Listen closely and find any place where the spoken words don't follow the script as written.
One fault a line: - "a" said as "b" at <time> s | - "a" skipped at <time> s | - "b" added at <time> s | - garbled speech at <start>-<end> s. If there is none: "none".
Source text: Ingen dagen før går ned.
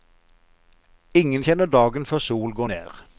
- "kjenner" added at 1.4 s
- "sol" added at 2.2 s